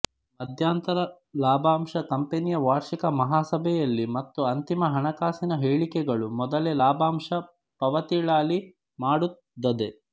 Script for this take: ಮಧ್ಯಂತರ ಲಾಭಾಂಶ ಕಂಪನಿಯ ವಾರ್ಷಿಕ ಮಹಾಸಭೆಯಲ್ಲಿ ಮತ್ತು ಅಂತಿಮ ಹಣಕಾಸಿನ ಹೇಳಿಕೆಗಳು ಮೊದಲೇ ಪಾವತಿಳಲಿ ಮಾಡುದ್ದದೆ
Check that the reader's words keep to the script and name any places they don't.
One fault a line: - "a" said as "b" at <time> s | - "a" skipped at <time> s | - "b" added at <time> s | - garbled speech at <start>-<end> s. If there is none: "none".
- "ಲಾಭಾಂಶ" added at 6.8 s